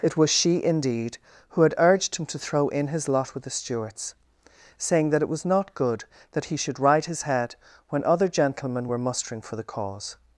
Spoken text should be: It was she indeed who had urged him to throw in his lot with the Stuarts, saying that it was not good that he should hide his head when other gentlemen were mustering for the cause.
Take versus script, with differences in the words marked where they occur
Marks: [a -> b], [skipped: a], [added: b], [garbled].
It was she indeed who had urged him to throw in his lot with the Stuarts, saying that it was not good that he should [hide -> ride] his head when other gentlemen were mustering for the cause.